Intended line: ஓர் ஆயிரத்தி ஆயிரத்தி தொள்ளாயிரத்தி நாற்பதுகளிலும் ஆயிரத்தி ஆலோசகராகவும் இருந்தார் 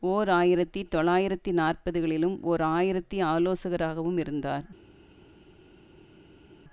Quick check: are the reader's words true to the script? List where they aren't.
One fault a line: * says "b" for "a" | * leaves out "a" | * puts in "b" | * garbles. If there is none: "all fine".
* leaves out "ஆயிரத்தி"
* puts in "ஓர்"